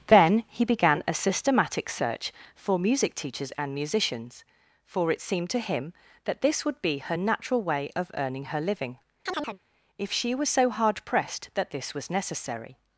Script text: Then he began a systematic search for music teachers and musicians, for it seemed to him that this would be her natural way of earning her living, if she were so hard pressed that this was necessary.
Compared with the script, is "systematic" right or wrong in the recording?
right